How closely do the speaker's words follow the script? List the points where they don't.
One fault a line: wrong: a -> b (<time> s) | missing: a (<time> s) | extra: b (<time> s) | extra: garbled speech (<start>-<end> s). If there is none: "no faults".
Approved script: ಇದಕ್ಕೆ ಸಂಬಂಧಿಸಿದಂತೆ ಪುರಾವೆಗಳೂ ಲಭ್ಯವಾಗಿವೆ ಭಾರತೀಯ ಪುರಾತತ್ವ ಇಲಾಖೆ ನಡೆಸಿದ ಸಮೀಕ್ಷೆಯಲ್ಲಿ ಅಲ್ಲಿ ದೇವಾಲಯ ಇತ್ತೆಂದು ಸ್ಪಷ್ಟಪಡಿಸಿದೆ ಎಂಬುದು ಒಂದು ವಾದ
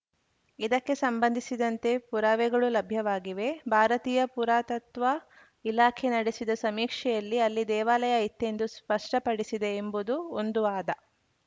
no faults